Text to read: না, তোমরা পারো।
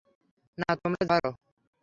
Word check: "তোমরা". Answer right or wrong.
right